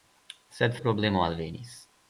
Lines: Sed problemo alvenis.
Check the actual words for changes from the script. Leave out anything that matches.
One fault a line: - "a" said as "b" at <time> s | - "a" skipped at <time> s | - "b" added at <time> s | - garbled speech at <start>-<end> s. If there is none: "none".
none